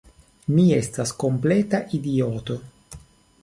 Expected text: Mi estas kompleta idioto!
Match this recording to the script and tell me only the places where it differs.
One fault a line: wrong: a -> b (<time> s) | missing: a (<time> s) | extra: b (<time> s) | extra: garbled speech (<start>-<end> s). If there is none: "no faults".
no faults